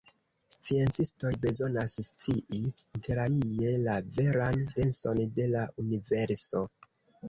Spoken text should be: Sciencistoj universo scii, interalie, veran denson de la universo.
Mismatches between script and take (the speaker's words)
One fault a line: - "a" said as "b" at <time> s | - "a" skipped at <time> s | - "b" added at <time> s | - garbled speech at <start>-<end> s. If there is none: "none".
- "universo" said as "bezonas" at 1.4 s
- "la" added at 3.9 s